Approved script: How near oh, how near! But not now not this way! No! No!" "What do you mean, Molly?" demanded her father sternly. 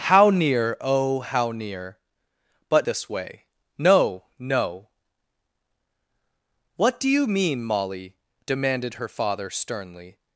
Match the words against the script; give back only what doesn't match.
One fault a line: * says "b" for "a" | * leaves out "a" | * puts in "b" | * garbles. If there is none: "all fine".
* leaves out "not now not"